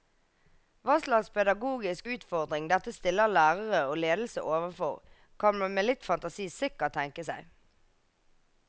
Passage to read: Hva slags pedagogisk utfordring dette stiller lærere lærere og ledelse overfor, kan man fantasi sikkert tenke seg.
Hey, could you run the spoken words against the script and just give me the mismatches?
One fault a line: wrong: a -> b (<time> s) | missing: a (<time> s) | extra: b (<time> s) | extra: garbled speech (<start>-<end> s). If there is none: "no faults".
missing: lærere (3.8 s)
extra: med litt (5.7 s)